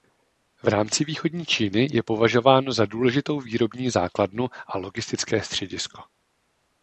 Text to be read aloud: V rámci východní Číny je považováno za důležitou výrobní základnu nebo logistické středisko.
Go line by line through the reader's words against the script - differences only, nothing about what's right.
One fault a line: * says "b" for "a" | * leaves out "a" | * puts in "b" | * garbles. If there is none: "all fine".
* says "a" for "nebo"